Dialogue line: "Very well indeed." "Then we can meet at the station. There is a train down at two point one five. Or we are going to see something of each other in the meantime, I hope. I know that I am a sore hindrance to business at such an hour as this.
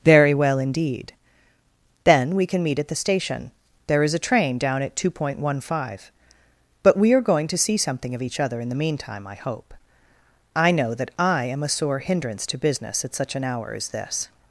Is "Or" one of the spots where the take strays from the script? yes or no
yes